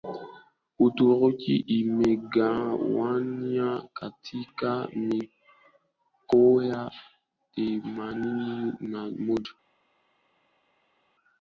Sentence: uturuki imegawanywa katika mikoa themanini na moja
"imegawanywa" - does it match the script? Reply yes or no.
yes